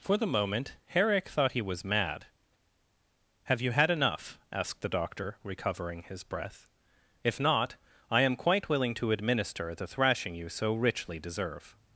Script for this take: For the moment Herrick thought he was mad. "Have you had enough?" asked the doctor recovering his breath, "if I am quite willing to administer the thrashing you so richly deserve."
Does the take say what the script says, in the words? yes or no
no